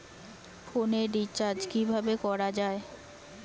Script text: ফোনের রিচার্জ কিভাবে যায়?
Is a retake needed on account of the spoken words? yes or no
yes